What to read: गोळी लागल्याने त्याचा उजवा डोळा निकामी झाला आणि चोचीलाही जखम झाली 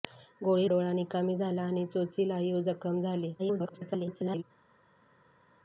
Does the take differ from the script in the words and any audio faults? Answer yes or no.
yes